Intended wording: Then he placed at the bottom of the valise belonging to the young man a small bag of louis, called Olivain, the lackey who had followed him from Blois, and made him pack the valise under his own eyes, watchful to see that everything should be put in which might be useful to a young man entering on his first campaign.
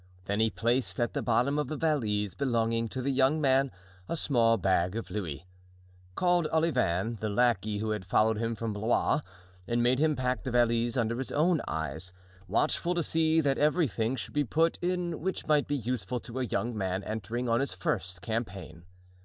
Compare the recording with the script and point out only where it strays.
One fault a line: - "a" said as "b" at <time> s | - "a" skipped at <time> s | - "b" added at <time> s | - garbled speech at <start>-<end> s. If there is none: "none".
none